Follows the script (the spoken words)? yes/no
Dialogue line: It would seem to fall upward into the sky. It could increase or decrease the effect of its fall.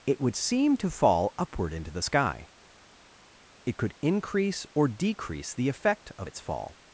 yes